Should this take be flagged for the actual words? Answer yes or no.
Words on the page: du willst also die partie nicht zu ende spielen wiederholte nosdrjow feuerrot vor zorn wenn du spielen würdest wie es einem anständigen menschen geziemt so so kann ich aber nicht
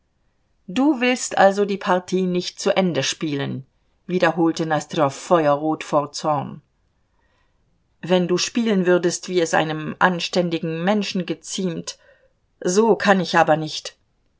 yes